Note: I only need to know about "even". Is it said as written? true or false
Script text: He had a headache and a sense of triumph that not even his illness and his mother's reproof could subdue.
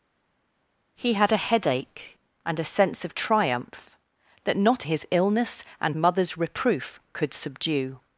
false